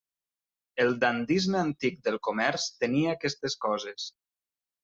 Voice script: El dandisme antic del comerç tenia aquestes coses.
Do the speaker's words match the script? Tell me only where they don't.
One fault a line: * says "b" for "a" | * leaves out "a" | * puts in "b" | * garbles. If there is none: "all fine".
all fine